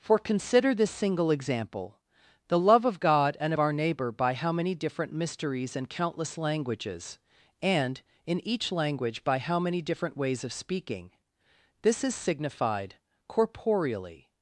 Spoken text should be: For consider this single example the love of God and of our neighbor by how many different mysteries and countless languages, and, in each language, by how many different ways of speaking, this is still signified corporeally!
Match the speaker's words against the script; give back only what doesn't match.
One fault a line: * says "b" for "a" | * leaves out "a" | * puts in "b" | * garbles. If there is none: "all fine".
* leaves out "still"